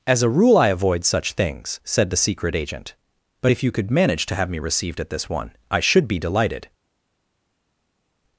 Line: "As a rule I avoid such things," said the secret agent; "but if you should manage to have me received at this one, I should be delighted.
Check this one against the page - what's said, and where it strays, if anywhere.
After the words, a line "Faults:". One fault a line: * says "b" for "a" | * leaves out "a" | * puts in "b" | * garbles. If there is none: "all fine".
"As a rule I avoid such things," said the secret agent; "but if you could manage to have me received at this one, I should be delighted.
Faults:
* says "could" for "should"